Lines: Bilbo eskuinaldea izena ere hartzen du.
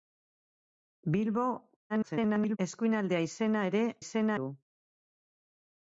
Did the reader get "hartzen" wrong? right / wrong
wrong